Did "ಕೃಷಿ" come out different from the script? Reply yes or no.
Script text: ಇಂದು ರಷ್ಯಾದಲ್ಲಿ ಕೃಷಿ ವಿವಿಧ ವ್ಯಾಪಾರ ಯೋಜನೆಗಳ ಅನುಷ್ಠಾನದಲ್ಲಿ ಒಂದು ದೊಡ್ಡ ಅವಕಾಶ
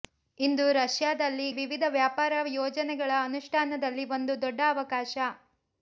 yes